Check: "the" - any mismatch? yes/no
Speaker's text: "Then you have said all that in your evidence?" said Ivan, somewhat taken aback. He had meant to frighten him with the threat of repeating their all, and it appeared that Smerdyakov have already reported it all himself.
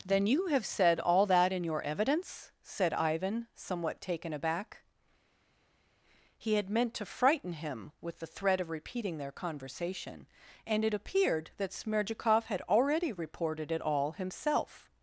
no